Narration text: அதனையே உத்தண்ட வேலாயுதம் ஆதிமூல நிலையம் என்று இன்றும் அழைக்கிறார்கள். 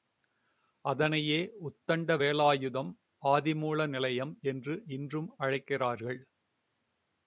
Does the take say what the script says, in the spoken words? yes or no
yes